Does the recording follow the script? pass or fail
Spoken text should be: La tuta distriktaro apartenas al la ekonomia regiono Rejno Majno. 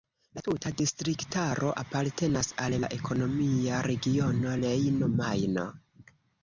pass